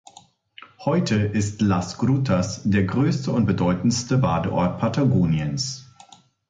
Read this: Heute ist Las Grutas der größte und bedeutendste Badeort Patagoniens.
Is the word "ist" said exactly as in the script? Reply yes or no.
yes